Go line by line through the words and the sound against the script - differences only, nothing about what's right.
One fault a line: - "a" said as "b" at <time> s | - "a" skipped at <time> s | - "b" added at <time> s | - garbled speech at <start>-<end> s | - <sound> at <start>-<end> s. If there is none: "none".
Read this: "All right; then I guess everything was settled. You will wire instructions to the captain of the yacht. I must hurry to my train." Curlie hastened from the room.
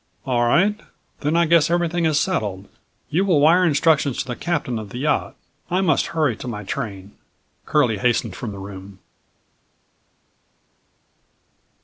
- "was" said as "is" at 2.0 s